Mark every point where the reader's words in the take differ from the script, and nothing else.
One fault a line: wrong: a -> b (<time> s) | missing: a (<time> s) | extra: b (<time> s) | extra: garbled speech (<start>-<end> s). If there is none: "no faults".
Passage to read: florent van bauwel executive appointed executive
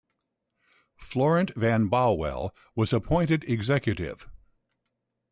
wrong: executive -> was (2.7 s)